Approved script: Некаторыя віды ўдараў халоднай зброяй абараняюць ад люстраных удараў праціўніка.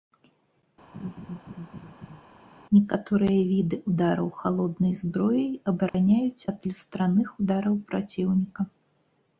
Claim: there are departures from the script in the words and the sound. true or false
true